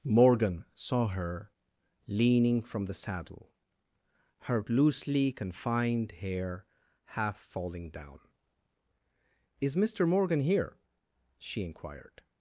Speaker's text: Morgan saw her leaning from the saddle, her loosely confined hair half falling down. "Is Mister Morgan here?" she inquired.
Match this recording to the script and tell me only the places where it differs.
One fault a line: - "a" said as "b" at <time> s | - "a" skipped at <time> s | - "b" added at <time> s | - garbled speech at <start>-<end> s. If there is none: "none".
none